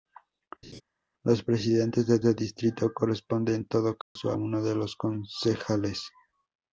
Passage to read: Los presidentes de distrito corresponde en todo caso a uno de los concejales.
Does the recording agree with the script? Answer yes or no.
no